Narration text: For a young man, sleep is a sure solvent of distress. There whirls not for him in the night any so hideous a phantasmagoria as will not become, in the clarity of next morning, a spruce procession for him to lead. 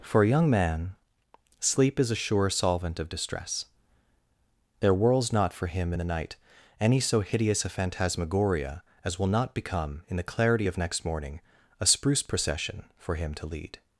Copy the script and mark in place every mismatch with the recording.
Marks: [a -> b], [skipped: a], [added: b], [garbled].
For a young man, sleep is a sure solvent of distress. There whirls not for him in the night any so hideous a phantasmagoria as will not become, in the clarity of next morning, a spruce procession for him to lead.